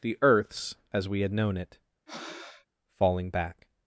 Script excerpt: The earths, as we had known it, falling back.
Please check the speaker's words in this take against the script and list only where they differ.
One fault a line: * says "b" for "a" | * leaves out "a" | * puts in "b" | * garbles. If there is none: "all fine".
all fine